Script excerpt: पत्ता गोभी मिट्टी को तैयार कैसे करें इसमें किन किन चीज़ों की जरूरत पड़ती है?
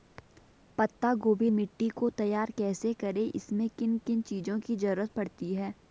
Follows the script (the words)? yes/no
yes